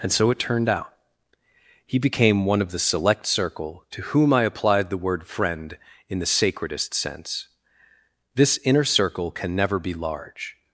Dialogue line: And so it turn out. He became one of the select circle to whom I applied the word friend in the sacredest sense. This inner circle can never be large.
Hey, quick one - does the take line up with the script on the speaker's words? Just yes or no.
no